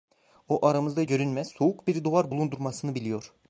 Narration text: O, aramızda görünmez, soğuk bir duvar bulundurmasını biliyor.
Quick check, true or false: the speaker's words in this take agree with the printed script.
true